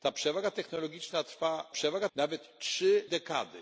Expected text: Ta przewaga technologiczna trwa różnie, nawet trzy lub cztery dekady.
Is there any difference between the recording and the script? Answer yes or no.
yes